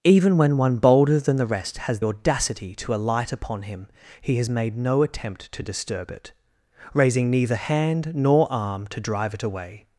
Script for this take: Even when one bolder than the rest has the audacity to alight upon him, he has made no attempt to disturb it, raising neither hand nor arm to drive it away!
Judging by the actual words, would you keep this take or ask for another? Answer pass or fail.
fail